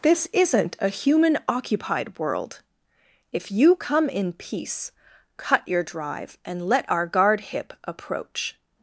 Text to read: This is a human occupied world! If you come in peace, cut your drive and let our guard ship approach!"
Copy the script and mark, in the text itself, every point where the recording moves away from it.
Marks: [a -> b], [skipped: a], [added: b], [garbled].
This [is -> isn't] a human occupied world! If you come in peace, cut your drive and let our guard [ship -> hip] approach!"